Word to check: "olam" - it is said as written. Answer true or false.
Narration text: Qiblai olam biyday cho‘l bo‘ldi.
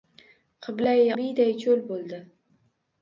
false